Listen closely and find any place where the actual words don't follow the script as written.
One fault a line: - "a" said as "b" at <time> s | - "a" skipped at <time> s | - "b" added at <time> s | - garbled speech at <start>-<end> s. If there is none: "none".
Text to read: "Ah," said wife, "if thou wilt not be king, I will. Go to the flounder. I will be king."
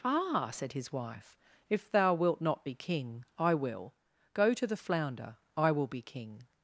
- "his" added at 0.7 s